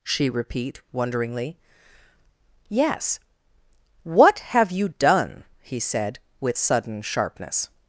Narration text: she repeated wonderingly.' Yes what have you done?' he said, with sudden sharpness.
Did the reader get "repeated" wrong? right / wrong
wrong